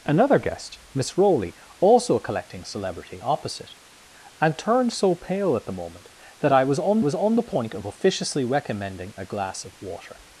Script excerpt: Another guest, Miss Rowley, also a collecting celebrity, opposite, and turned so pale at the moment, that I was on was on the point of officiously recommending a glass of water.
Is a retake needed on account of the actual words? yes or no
no